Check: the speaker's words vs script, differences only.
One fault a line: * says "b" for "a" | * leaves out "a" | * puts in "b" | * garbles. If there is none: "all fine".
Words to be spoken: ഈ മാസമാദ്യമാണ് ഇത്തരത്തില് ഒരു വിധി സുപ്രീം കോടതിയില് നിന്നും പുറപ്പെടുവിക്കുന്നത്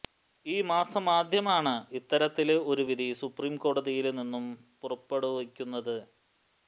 all fine